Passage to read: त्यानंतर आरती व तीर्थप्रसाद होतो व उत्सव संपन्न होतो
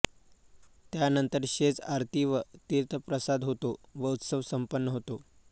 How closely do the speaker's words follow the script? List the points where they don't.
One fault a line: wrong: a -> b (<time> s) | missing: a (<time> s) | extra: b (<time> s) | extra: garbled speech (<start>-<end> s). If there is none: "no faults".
extra: शेज (1.5 s)